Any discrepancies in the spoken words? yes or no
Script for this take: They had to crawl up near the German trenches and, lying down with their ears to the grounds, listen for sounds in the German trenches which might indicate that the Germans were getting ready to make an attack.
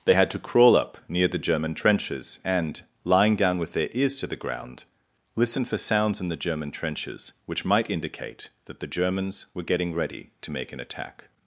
yes